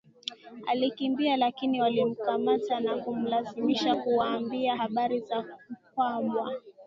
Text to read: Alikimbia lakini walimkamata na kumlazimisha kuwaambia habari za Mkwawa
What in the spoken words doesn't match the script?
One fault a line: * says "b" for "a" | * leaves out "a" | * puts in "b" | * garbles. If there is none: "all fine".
all fine